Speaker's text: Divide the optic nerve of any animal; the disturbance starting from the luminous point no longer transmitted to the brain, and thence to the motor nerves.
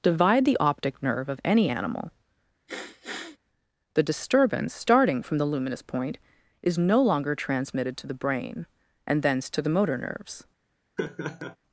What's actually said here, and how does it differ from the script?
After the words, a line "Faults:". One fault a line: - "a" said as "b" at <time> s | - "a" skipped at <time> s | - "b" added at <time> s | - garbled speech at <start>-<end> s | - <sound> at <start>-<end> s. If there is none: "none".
Divide the optic nerve of any animal; the disturbance starting from the luminous point is no longer transmitted to the brain, and thence to the motor nerves.
Faults:
- sniff at 2.7-3.4 s
- "is" added at 6.6 s
- laugh at 11.0-11.6 s